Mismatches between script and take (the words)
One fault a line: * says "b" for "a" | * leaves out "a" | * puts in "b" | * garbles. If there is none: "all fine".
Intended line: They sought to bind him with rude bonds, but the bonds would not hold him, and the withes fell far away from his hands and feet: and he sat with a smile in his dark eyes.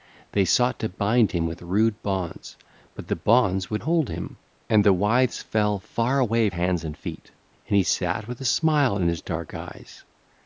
* leaves out "not"
* leaves out "from his"